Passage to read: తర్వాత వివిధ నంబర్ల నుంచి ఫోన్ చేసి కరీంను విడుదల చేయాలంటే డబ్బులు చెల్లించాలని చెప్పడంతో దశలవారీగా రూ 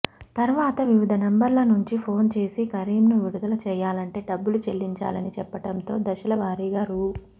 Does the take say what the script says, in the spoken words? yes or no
yes